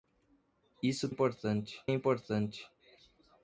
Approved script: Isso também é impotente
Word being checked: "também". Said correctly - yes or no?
no